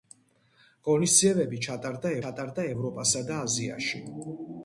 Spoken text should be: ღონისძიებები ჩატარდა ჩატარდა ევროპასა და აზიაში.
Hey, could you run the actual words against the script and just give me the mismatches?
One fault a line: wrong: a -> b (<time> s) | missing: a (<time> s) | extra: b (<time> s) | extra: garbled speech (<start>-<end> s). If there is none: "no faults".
no faults